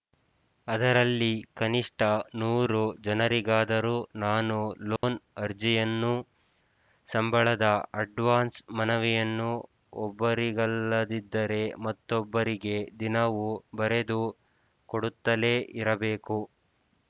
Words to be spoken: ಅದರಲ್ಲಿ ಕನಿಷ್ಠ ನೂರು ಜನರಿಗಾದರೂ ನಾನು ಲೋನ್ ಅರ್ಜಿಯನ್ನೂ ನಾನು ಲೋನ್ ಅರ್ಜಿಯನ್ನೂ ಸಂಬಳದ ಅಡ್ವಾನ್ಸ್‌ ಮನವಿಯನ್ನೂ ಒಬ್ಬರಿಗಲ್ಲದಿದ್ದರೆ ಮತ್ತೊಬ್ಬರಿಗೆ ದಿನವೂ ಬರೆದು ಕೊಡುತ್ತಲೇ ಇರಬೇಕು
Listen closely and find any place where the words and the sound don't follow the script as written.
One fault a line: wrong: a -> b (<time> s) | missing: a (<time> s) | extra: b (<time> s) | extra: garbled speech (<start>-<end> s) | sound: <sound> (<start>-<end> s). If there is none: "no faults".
sound: dropout (5.0-5.0 s)
missing: ನಾನು ಲೋನ್ ಅರ್ಜಿಯನ್ನೂ (6.1 s)